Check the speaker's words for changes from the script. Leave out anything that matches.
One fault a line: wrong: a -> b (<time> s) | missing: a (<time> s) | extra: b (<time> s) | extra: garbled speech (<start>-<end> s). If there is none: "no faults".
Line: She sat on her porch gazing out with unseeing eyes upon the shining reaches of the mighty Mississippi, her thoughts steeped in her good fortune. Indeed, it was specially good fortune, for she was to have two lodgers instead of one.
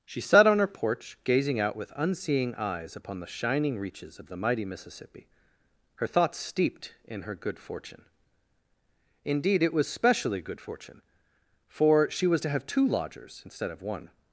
no faults